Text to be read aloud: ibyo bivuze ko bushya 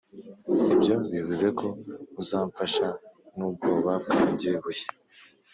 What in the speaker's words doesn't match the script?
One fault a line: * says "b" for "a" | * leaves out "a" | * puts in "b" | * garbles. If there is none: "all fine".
* puts in "uzamfasha nubwoba bwanjye"